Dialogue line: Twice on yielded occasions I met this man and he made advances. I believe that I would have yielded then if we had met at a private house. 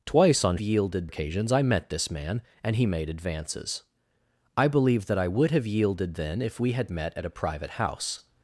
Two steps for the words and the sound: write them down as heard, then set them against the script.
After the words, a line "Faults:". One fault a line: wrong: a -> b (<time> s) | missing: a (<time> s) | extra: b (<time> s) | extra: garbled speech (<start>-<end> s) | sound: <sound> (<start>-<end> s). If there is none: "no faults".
Twice on yielded occasions I met this man and he made advances. I believe that I would have yielded then if we had met at a private house.
Faults:
no faults